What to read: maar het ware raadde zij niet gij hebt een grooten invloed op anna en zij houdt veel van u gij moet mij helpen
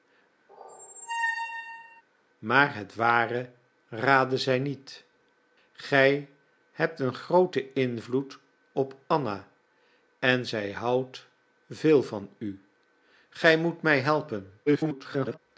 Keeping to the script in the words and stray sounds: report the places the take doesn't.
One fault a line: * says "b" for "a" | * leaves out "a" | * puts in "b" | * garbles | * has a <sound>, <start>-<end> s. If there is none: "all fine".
* has a squeak, 0.5-2.0 s
* garbles